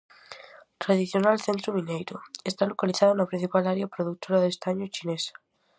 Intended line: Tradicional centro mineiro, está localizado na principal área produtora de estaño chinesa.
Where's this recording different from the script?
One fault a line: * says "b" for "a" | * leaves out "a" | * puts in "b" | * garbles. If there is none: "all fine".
all fine